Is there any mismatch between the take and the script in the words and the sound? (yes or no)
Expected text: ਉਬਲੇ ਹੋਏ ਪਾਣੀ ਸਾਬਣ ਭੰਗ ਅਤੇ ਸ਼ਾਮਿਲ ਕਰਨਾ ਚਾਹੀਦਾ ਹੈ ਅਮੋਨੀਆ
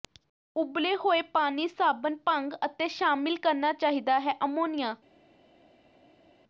no